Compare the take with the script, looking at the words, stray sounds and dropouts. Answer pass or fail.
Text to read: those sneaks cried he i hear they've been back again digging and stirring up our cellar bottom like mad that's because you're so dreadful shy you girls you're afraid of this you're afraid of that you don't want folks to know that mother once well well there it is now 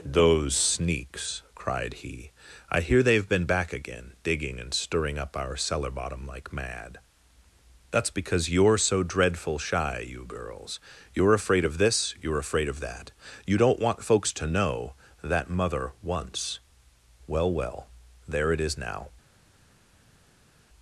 pass